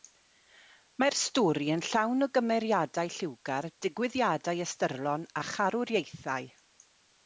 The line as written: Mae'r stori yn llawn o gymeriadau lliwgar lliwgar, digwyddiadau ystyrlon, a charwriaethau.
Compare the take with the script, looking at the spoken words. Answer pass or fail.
fail